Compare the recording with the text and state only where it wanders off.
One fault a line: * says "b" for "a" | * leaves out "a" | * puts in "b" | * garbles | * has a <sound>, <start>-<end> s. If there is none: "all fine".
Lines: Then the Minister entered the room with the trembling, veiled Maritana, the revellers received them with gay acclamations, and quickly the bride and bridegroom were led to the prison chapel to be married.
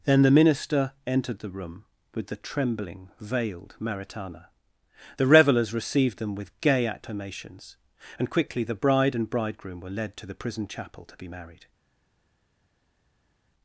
all fine